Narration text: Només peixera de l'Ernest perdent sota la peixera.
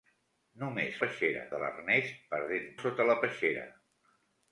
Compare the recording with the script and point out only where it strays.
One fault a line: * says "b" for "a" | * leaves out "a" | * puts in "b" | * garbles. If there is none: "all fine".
all fine